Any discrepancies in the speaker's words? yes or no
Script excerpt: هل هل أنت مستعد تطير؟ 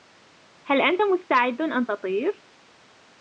yes